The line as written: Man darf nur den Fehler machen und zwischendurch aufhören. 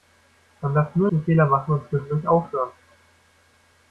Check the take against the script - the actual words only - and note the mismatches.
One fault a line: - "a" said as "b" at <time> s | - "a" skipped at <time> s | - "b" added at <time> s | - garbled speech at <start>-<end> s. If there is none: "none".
none